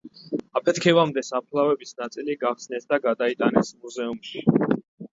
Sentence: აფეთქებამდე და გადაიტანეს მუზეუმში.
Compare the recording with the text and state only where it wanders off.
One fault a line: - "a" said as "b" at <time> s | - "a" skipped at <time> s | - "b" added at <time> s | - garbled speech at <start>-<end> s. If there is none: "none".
- "საფლავების ნაწილი გახსნეს" added at 1.3 s